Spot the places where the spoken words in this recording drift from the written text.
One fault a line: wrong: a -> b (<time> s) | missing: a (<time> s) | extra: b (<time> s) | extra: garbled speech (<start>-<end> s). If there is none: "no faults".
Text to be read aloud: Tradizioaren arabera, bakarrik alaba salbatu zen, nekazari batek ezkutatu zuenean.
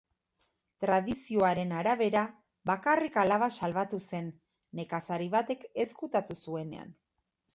no faults